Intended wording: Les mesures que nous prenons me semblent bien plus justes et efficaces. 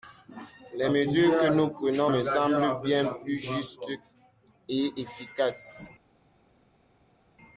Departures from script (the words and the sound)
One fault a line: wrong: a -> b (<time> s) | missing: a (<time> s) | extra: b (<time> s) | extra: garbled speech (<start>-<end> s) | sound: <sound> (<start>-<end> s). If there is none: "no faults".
no faults